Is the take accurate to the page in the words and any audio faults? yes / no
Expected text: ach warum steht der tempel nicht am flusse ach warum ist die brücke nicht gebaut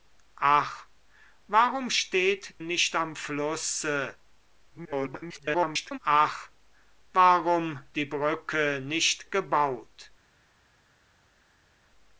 no